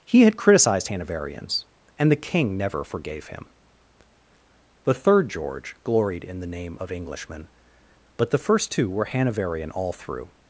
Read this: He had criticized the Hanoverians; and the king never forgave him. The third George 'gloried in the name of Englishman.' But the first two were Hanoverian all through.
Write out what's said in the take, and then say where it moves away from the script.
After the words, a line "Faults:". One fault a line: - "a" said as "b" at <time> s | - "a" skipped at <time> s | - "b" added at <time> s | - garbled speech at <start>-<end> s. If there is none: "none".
He had criticized Hanoverians; and the king never forgave him. The third George 'gloried in the name of Englishman.' But the first two were Hanoverian all through.
Faults:
- "the" skipped at 0.9 s